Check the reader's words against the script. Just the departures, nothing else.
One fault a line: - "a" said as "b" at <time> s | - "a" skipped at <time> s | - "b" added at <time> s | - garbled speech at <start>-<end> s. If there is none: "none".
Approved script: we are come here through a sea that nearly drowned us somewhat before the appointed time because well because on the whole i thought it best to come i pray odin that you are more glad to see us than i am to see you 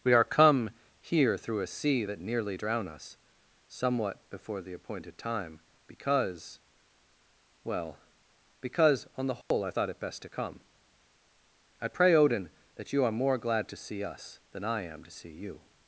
- "drowned" said as "drown" at 2.5 s